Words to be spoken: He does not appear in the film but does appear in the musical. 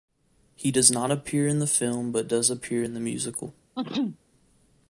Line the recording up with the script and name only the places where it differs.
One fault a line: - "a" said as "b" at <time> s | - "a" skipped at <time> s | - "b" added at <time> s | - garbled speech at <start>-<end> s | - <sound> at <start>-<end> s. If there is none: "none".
- sneeze at 3.7-4.2 s